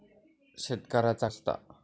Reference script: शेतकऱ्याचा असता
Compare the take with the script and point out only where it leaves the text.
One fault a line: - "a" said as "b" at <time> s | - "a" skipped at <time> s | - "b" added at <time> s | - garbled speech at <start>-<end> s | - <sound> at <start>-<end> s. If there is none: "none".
none